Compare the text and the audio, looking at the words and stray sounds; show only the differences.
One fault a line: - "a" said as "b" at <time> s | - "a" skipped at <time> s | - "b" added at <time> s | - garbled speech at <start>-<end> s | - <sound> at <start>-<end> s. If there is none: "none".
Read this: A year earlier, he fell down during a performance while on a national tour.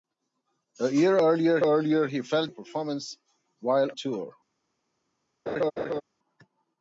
- "earlier" added at 1.6 s
- "down during" skipped at 2.5 s
- "on a national" skipped at 3.9 s
- laugh at 5.5-6.0 s